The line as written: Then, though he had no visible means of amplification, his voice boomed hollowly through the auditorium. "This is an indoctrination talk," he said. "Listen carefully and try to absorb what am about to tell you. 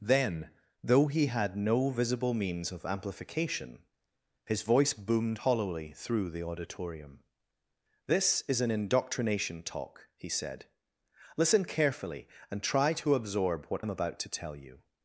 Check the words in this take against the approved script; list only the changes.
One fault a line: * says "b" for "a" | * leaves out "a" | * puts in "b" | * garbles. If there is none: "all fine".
all fine